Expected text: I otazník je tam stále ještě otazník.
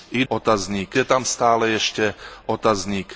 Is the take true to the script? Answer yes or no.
yes